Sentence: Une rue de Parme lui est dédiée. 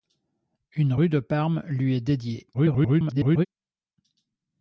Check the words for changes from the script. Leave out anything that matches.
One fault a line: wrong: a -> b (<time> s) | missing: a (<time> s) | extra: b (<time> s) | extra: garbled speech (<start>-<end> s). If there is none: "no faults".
extra: garbled speech (2.5-3.5 s)